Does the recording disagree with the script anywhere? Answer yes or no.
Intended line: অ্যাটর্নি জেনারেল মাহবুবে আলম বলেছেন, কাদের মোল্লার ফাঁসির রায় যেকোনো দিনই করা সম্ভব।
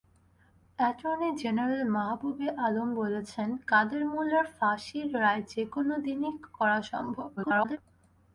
yes